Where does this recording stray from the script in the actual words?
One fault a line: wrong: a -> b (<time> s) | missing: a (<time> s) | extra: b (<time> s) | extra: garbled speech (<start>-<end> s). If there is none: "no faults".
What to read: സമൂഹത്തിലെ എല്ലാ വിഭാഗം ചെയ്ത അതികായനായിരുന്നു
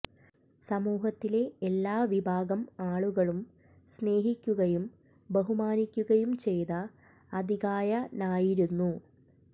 extra: ആളുകളും സ്നേഹിക്കുകയും ബഹുമാനിക്കുകയും (2.8 s)